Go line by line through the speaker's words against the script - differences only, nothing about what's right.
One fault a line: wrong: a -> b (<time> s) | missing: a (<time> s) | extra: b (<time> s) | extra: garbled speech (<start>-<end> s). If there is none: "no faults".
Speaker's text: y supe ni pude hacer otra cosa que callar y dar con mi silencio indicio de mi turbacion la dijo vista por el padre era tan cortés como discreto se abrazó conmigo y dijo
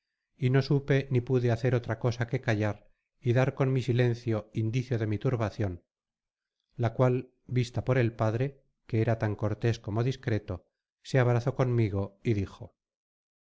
extra: no (0.5 s)
wrong: dijo -> cual (7.0 s)
extra: que (8.9 s)